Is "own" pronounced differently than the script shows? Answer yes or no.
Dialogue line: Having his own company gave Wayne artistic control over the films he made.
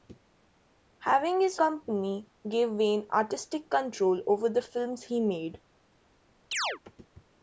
yes